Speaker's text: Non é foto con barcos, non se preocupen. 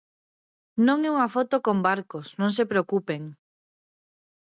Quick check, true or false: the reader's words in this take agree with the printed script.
false